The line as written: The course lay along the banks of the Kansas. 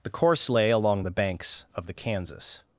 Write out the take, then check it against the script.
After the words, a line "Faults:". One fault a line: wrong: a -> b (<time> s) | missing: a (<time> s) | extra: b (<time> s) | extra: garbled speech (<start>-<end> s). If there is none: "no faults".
The course lay along the banks of the Kansas.
Faults:
no faults